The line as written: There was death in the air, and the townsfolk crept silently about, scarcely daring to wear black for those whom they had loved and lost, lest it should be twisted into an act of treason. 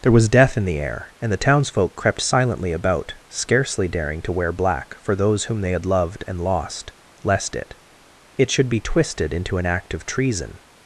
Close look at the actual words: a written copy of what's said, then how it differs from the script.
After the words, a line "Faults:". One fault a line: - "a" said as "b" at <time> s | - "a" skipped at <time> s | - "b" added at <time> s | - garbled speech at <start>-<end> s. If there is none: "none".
There was death in the air, and the townsfolk crept silently about, scarcely daring to wear black for those whom they had loved and lost, lest it it should be twisted into an act of treason.
Faults:
- "it" added at 8.3 s